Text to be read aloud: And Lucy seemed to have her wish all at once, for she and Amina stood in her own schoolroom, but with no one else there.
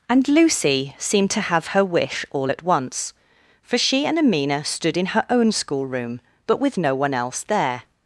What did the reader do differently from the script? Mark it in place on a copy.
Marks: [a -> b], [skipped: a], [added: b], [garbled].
And Lucy seemed to have her wish all at once, for she and Amina stood in her own schoolroom, but with no one else there.